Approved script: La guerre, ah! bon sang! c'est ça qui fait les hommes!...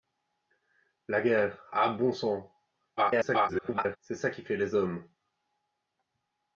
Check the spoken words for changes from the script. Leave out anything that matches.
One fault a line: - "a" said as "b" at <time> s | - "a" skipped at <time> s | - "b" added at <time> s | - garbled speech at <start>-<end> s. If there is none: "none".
- garbled speech at 3.0-4.0 s